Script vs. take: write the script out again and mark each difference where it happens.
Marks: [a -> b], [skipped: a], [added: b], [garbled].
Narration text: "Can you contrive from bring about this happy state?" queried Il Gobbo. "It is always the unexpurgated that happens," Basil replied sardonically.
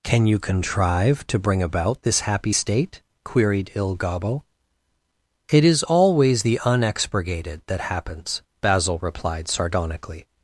"Can you contrive [from -> to] bring about this happy state?" queried Il Gobbo. "It is always the unexpurgated that happens," Basil replied sardonically.